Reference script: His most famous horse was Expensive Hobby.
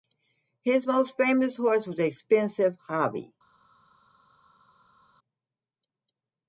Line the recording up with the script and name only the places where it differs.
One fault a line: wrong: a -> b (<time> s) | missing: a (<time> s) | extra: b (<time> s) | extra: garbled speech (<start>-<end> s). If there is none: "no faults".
no faults